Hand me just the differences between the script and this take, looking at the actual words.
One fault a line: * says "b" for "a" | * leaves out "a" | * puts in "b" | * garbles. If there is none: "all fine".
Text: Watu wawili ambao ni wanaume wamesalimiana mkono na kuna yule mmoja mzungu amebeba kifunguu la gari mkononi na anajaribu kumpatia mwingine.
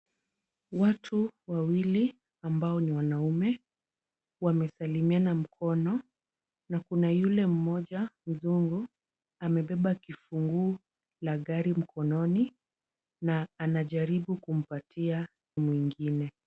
all fine